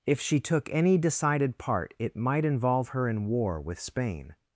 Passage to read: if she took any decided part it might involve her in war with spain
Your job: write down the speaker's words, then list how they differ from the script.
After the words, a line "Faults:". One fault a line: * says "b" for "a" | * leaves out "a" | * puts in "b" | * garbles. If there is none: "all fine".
if she took any decided part it might involve her in war with spain
Faults:
all fine